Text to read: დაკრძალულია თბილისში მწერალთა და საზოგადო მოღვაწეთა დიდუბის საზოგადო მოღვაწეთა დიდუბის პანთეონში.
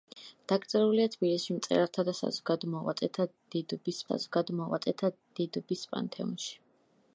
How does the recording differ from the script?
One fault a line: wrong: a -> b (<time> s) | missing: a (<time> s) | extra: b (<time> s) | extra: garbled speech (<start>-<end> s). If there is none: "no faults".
no faults